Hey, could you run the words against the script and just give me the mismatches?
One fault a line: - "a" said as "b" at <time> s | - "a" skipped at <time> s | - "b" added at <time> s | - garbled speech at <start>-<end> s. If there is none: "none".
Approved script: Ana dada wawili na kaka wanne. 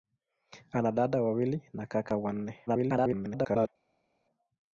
- garbled speech at 2.7-3.7 s